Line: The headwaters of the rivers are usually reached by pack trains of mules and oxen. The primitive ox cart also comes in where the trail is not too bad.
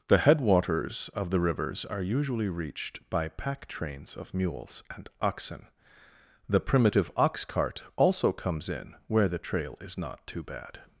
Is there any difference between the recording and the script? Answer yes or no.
no